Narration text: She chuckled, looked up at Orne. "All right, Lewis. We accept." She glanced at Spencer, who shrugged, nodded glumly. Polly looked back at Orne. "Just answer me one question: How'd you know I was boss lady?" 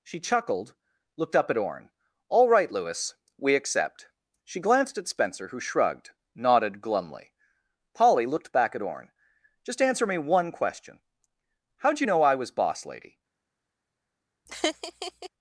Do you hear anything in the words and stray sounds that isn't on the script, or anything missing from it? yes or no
yes